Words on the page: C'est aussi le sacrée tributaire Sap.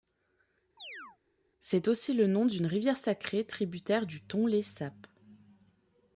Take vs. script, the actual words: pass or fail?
fail